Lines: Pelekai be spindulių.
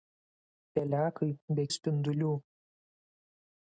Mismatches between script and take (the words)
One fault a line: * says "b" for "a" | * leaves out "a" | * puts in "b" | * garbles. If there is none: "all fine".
all fine